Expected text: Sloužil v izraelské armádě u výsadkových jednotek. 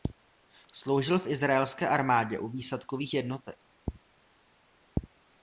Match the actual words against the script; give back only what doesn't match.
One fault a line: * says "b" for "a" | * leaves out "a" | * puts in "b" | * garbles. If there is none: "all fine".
all fine